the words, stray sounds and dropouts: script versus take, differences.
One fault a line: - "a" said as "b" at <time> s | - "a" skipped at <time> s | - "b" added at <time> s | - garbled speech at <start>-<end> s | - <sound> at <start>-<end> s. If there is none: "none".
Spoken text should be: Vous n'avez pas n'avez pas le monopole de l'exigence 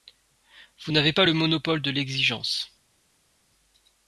- "n'avez pas" skipped at 1.3 s